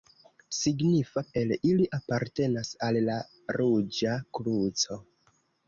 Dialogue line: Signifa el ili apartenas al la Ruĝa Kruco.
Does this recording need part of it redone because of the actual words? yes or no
no